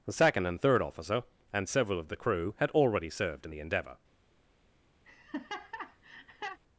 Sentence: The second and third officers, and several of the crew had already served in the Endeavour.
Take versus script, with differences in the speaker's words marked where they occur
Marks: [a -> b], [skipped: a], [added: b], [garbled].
The second and third [officers, -> officer] and several of the crew had already served in the Endeavour.